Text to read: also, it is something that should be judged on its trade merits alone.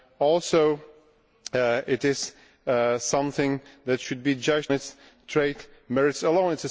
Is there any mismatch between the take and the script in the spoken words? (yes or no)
yes